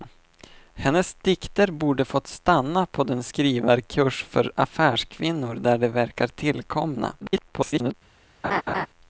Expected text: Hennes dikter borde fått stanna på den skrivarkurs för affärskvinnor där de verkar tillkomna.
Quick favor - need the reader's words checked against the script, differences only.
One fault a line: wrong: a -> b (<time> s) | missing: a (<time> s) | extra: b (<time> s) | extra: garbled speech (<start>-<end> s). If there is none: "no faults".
extra: garbled speech (7.2-7.9 s)